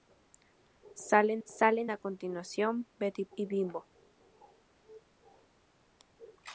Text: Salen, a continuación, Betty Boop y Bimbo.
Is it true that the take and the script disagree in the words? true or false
true